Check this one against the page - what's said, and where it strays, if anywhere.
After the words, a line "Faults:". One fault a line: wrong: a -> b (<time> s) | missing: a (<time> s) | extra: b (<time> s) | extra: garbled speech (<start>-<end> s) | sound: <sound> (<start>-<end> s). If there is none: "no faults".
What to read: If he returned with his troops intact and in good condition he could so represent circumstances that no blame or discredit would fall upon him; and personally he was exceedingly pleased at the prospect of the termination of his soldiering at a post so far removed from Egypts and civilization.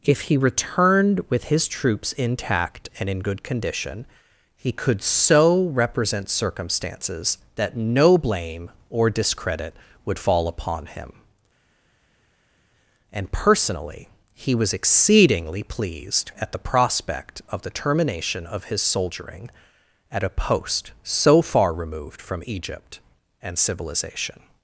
If he returned with his troops intact and in good condition he could so represent circumstances that no blame or discredit would fall upon him; and personally he was exceedingly pleased at the prospect of the termination of his soldiering at a post so far removed from Egypt and civilization.
Faults:
wrong: Egypts -> Egypt (22.5 s)